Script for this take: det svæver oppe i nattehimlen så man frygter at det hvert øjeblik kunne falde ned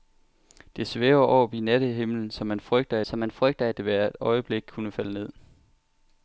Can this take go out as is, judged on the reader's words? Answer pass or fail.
fail